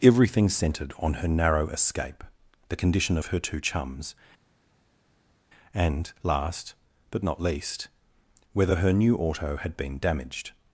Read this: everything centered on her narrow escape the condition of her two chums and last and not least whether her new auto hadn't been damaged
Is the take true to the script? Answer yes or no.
no